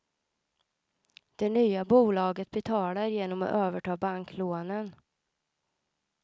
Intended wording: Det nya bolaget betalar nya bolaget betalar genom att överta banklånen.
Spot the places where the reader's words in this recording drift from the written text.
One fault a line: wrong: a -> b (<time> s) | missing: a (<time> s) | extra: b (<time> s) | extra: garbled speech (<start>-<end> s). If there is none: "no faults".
missing: nya bolaget betalar (3.1 s)